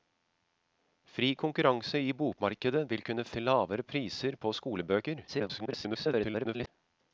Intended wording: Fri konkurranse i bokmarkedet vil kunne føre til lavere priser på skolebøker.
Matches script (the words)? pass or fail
fail